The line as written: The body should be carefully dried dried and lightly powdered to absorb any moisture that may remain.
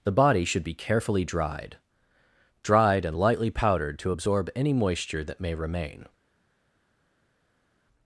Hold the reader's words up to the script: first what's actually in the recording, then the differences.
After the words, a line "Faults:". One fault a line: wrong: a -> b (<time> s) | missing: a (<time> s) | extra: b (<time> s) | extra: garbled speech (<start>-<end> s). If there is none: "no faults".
The body should be carefully dried dried and lightly powdered to absorb any moisture that may remain.
Faults:
no faults